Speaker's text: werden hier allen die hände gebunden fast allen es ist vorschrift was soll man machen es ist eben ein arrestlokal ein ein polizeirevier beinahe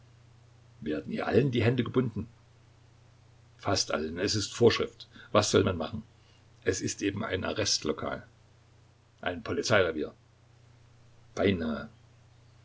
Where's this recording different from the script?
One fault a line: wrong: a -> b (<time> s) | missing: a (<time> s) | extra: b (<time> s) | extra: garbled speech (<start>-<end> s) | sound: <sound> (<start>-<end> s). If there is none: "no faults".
missing: ein (9.4 s)